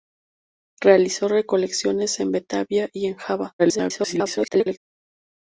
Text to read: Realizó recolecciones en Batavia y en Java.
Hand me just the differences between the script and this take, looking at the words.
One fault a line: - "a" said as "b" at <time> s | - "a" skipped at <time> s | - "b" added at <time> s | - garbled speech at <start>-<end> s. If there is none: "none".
- garbled speech at 3.6-4.8 s